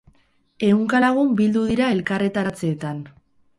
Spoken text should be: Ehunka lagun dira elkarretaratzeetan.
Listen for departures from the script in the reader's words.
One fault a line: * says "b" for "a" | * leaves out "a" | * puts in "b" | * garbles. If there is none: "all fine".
* puts in "bildu"